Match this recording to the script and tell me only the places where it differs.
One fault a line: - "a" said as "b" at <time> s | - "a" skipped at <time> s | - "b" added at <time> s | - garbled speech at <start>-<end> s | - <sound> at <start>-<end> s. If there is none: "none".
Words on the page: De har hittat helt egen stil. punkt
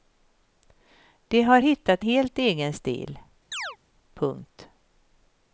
- chirp at 3.5-3.8 s